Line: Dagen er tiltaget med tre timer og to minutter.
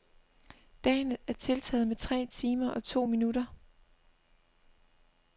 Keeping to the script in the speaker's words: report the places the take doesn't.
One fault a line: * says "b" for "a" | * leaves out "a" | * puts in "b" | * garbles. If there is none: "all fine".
all fine